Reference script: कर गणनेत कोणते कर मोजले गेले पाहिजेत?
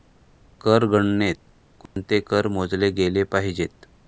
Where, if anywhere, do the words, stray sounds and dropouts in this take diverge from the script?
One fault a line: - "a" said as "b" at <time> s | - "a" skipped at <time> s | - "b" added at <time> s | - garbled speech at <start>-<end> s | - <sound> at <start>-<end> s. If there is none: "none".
- dropout at 1.9-2.0 s